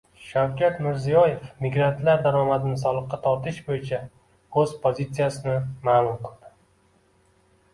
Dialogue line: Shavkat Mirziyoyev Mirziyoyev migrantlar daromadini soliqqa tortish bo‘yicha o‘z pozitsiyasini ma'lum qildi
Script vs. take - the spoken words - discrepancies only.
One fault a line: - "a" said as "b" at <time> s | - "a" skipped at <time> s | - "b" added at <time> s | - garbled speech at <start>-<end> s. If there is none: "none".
- "Mirziyoyev" skipped at 1.4 s